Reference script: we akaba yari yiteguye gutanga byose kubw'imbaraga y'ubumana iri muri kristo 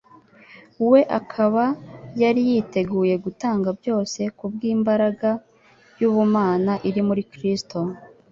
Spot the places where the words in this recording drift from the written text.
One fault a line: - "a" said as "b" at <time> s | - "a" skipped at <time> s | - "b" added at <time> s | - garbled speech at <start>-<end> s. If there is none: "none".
none